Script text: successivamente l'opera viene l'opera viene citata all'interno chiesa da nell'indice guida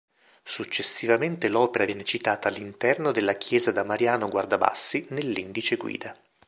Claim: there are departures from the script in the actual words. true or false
true